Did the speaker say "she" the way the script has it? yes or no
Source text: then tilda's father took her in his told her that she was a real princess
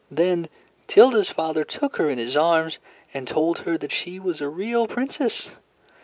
yes